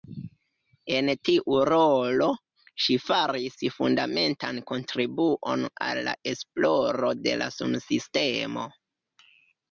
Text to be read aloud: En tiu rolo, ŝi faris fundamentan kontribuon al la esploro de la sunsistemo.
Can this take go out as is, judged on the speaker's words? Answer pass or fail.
pass